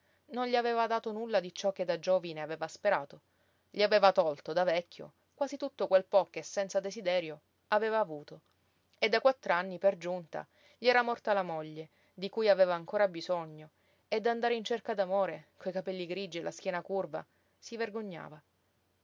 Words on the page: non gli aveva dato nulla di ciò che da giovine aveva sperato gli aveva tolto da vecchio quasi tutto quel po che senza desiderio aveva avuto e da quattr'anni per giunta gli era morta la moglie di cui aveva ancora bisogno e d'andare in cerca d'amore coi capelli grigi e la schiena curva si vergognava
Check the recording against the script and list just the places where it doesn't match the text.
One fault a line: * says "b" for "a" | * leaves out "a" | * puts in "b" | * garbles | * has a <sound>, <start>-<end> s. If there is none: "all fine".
all fine